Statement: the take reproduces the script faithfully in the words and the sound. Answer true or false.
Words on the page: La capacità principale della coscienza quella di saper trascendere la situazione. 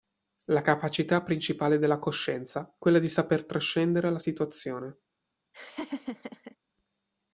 false